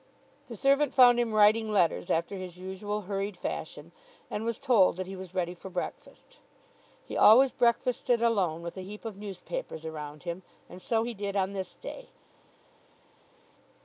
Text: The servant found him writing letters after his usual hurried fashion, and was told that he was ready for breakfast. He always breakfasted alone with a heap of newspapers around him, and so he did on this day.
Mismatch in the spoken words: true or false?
false